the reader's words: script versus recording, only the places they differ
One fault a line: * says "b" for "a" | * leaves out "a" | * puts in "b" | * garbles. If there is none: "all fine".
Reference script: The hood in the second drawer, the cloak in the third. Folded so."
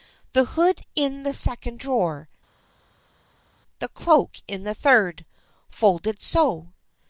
all fine